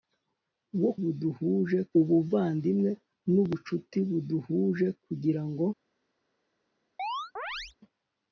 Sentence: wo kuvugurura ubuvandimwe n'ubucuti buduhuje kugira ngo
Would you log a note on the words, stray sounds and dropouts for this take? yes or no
yes